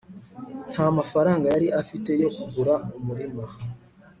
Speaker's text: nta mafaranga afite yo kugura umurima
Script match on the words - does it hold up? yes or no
no